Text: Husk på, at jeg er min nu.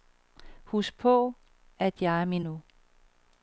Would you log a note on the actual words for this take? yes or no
no